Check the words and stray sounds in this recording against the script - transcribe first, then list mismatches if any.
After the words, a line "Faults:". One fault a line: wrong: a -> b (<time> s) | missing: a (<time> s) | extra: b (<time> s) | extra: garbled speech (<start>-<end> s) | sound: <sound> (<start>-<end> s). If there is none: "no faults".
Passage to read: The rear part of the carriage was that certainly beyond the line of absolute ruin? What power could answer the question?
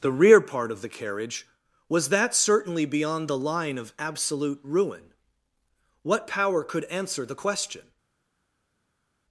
The rear part of the carriage was that certainly beyond the line of absolute ruin? What power could answer the question?
Faults:
no faults